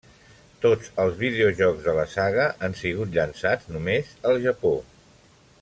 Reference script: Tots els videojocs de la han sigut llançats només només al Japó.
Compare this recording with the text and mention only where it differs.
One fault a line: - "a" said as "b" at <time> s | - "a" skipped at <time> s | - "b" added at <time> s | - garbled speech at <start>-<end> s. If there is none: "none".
- "saga" added at 2.2 s
- "només" skipped at 4.1 s